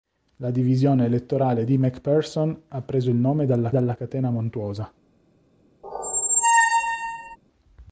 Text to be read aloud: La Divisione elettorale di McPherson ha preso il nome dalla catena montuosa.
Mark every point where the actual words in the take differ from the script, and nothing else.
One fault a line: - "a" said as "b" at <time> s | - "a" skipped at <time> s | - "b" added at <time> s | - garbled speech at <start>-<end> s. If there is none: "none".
- "dalla" added at 3.7 s